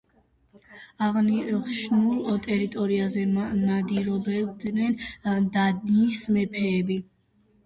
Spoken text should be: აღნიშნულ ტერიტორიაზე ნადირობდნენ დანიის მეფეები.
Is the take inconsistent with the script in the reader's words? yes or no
no